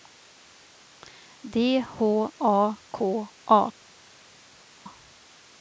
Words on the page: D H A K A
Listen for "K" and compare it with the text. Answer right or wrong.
right